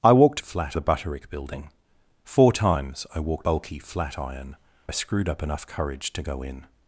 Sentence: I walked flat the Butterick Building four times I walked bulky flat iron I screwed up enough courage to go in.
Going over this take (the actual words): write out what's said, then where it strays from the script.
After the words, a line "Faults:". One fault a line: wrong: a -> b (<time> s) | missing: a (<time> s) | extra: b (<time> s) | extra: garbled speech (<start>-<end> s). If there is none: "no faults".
I walked flat the Butterick Building four times I walked bulky flat iron I screwed up enough courage to go in.
Faults:
no faults